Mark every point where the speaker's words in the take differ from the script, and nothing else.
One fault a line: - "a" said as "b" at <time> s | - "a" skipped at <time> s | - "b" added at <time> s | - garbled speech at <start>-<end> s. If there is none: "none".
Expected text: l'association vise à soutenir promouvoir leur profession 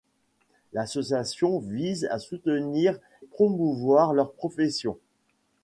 none